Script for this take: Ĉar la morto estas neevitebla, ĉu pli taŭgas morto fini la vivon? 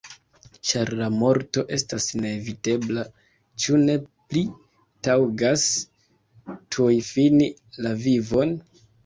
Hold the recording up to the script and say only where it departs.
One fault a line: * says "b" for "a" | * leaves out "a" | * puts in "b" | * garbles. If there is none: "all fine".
* puts in "ne"
* says "tuj" for "morto"